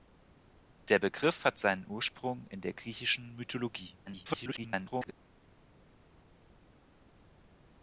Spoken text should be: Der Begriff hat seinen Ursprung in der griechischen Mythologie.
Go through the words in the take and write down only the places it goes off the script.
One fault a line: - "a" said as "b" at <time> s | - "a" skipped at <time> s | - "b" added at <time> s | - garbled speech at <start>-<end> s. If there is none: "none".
- garbled speech at 4.1-5.1 s